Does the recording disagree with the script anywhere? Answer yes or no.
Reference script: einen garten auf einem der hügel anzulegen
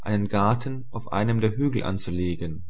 no